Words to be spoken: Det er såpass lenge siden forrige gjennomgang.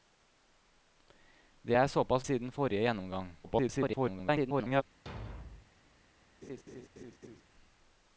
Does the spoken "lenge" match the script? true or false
false